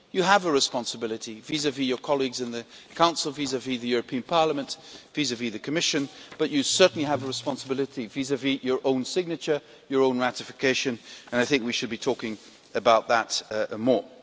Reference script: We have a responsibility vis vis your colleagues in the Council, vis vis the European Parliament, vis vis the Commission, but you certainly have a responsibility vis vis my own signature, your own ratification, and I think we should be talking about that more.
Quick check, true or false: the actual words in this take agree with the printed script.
false